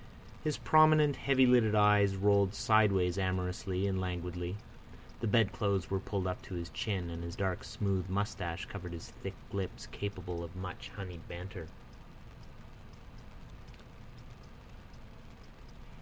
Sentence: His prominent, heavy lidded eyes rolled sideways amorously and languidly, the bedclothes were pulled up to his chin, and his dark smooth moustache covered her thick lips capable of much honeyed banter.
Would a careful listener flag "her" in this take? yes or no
yes